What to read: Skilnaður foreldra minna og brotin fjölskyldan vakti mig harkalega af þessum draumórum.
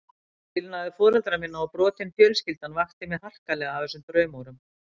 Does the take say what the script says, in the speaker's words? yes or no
yes